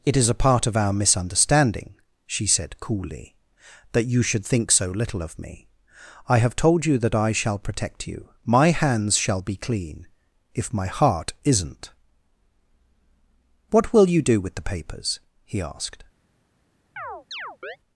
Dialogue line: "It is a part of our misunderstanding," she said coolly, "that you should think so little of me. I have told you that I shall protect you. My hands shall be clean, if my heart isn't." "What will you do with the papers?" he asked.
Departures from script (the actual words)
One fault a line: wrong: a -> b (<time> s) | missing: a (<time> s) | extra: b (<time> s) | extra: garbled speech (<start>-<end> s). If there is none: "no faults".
no faults